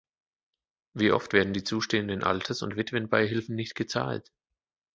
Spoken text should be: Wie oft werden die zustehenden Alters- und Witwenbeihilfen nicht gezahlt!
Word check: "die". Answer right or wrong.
right